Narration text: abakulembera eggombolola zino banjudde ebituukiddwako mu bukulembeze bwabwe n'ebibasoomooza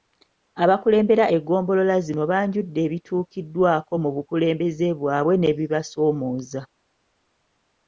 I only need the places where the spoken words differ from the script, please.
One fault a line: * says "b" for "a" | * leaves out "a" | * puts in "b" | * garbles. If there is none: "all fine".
all fine